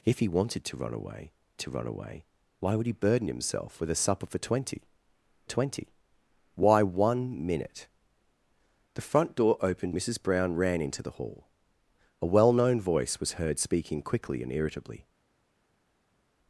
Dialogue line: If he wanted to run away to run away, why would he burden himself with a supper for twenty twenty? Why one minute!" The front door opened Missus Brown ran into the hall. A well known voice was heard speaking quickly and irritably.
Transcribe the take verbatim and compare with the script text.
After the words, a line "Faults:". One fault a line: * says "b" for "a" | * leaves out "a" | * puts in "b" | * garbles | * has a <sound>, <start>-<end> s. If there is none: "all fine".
If he wanted to run away to run away, why would he burden himself with a supper for twenty twenty? Why one minute!" The front door opened Missus Brown ran into the hall. A well known voice was heard speaking quickly and irritably.
Faults:
all fine